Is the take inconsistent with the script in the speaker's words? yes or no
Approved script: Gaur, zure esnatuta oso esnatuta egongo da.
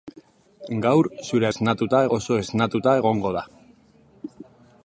no